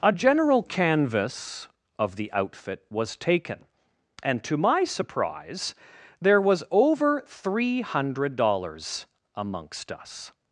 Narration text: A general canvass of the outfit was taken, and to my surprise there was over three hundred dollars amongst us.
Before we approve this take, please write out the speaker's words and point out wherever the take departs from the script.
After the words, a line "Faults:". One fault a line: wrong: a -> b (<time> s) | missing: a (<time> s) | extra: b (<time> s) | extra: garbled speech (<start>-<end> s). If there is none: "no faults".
A general canvass of the outfit was taken, and to my surprise there was over three hundred dollars amongst us.
Faults:
no faults